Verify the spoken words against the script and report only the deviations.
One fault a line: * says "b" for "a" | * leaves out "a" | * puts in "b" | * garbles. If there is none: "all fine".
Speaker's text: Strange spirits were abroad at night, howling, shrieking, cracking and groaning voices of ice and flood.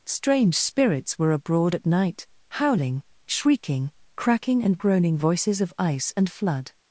all fine